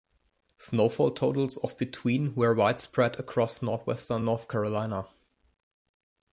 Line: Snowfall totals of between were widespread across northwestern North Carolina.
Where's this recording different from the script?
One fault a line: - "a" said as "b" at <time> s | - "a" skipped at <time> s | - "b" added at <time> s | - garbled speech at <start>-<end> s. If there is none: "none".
none